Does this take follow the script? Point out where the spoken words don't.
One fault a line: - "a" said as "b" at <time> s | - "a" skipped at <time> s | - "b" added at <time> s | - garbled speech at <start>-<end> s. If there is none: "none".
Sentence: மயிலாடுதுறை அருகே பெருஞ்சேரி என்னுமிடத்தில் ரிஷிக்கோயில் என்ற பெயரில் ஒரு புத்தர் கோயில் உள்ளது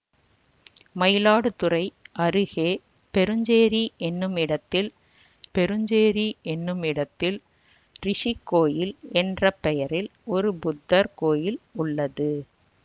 - "பெருஞ்சேரி என்னுமிடத்தில்" added at 5.5 s